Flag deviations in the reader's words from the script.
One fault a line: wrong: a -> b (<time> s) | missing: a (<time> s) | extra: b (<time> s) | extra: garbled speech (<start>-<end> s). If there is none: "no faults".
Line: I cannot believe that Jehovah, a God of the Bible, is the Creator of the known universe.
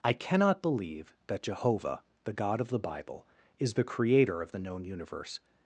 wrong: a -> the (2.2 s)